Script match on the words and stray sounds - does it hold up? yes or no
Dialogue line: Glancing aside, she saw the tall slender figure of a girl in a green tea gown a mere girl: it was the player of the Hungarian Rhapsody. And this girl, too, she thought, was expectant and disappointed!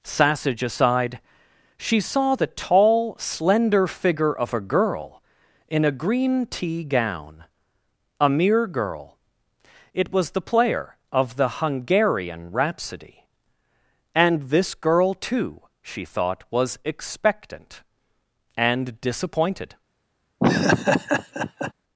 no